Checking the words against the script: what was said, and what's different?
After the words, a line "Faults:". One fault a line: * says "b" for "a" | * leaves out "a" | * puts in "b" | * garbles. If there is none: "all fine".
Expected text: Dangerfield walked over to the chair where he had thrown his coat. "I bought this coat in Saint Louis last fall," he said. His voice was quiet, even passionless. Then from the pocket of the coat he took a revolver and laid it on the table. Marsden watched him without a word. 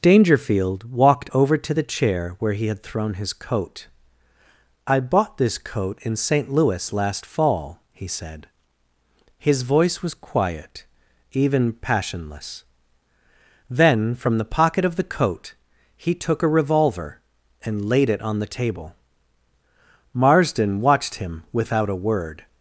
Dangerfield walked over to the chair where he had thrown his coat. "I bought this coat in Saint Louis last fall," he said. His voice was quiet, even passionless. Then from the pocket of the coat he took a revolver and laid it on the table. Marsden watched him without a word.
Faults:
all fine